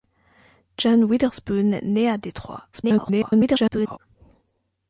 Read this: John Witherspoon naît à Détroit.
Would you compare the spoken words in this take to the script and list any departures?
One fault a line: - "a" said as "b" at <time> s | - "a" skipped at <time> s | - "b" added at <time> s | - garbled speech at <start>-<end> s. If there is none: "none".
- garbled speech at 2.7-4.0 s